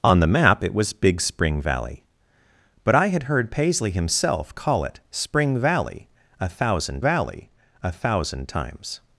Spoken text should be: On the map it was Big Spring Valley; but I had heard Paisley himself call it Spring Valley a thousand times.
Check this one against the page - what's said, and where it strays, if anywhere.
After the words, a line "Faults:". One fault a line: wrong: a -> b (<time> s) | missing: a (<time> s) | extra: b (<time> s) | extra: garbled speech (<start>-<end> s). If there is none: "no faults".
On the map it was Big Spring Valley; but I had heard Paisley himself call it Spring Valley a thousand Valley a thousand times.
Faults:
extra: Valley a thousand (7.0 s)